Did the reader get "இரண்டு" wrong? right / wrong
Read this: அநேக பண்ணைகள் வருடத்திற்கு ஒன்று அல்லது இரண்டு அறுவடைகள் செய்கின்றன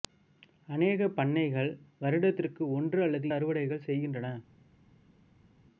wrong